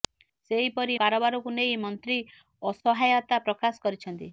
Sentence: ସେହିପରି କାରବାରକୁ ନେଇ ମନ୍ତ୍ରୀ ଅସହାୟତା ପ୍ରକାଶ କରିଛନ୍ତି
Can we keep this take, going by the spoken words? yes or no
yes